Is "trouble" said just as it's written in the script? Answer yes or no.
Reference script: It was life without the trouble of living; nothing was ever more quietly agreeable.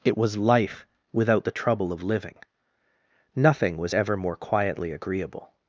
yes